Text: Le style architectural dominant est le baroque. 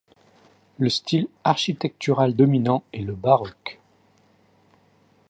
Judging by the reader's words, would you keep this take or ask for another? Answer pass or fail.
pass